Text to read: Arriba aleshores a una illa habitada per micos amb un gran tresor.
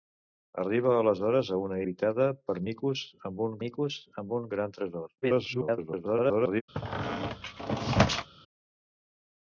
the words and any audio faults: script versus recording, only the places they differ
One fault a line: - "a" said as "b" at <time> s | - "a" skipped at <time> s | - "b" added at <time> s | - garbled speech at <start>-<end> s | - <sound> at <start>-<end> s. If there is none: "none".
- "illa" skipped at 1.8 s
- "micos amb un" added at 3.7 s
- garbled speech at 5.2-6.6 s
- squeak at 6.7-8.3 s